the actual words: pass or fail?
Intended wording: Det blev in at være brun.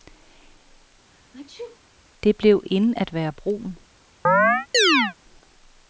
pass